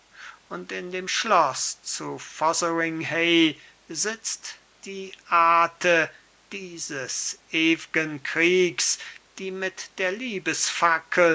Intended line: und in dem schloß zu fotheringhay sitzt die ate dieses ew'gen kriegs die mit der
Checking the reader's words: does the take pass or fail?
pass